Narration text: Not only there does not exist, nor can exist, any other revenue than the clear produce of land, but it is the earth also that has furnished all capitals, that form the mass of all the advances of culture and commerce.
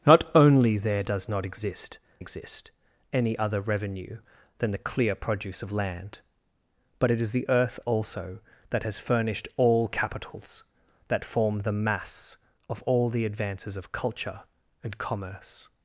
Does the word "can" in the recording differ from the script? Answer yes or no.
yes